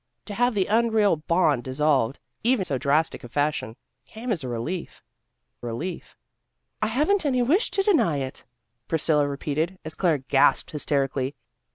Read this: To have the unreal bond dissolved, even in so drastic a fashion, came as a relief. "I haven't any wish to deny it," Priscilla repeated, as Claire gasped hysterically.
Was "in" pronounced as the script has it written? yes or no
no